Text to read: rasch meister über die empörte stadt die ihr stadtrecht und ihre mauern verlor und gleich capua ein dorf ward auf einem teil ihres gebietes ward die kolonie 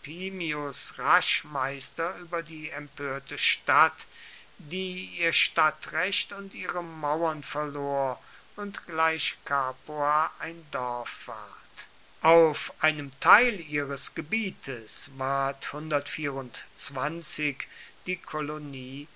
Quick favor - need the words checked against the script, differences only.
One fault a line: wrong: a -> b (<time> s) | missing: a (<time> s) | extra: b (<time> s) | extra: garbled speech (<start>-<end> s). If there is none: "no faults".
no faults